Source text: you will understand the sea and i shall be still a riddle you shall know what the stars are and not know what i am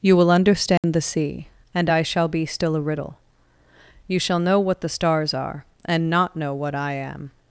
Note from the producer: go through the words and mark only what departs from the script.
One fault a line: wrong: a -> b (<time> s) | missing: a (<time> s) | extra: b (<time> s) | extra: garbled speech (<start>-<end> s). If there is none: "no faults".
no faults